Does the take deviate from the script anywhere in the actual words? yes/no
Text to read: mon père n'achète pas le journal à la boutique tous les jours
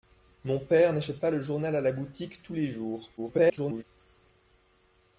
yes